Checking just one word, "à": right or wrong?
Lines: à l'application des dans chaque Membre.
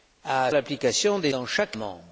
right